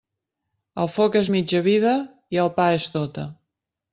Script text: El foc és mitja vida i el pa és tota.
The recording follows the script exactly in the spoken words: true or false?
true